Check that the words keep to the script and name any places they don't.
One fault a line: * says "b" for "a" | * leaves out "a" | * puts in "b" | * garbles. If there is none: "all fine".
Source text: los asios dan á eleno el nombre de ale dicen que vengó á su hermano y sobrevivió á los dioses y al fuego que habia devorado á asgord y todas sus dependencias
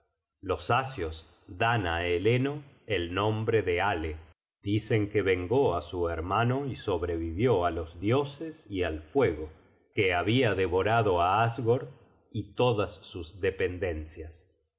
all fine